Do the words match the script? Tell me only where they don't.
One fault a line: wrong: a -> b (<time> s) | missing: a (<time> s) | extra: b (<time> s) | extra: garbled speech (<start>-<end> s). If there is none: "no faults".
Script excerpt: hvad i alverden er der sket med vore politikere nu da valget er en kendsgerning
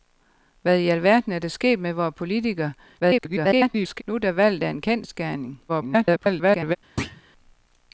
extra: garbled speech (3.0-4.0 s)
extra: garbled speech (5.7-6.8 s)